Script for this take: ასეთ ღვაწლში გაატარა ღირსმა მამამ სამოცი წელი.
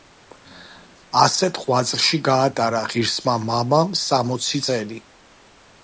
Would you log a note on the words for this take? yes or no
no